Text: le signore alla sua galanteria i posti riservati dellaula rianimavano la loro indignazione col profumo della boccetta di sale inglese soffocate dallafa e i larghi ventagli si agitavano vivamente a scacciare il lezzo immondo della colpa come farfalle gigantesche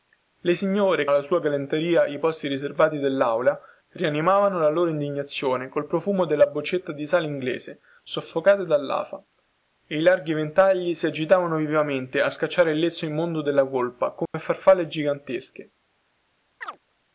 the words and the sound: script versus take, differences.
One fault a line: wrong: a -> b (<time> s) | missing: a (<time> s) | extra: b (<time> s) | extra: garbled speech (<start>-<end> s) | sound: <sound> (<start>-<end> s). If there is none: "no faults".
sound: dropout (14.3-14.3 s)
sound: chirp (16.6-16.8 s)